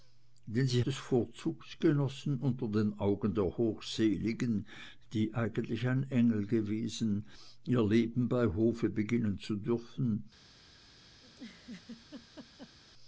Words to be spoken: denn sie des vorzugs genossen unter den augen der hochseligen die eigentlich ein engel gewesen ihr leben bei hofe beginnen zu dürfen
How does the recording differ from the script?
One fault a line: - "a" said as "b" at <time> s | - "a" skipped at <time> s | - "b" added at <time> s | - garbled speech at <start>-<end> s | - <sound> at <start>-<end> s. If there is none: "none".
- laugh at 11.2-12.8 s